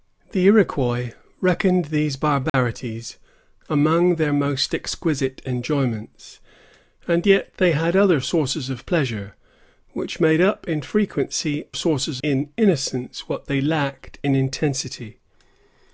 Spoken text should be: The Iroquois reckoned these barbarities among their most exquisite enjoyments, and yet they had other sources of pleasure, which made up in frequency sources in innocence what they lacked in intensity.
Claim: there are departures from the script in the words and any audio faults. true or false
true